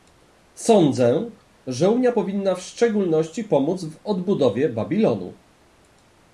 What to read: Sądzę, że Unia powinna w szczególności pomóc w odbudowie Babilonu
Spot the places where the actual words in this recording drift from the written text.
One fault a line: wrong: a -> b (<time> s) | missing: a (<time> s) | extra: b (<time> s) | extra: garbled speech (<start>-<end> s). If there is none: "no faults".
no faults